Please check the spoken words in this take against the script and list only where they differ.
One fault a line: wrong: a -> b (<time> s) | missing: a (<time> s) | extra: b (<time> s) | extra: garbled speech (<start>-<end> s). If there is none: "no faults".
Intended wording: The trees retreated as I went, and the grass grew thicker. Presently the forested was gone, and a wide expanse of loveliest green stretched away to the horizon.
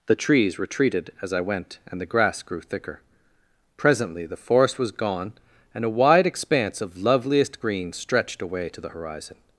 wrong: forested -> forest (4.4 s)